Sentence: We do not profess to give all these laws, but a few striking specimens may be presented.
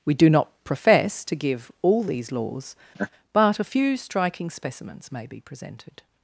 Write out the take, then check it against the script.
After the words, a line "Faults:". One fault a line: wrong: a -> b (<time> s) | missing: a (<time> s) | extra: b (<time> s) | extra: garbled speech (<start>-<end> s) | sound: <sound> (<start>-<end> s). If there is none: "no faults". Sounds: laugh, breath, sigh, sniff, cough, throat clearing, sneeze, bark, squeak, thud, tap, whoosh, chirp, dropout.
We do not profess to give all these laws, but a few striking specimens may be presented.
Faults:
sound: laugh (2.9-3.1 s)